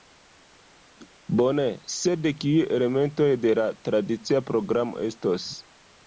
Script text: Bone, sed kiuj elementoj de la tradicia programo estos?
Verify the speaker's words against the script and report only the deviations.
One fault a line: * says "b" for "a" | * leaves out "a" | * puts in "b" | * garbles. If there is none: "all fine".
all fine